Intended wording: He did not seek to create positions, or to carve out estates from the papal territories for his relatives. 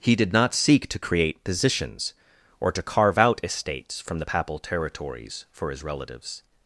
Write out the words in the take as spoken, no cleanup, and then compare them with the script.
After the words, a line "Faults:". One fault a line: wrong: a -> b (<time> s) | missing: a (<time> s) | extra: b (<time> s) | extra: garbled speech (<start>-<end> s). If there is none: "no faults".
He did not seek to create positions, or to carve out estates from the papal territories for his relatives.
Faults:
no faults